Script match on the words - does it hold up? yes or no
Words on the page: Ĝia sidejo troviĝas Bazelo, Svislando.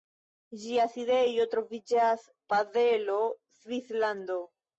yes